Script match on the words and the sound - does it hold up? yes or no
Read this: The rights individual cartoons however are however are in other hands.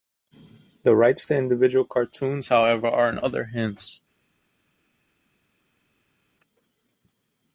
no